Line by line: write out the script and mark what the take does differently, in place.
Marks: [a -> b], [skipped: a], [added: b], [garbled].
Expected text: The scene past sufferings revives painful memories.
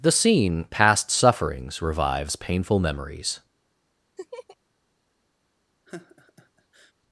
The scene past sufferings revives painful memories.